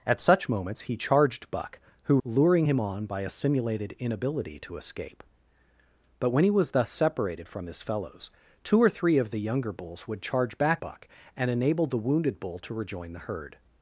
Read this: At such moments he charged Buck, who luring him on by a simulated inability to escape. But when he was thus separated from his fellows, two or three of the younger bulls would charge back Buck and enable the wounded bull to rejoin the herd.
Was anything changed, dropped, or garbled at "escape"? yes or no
no